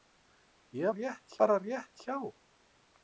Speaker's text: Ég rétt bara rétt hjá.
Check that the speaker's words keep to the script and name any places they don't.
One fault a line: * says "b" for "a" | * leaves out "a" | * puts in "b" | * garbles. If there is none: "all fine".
all fine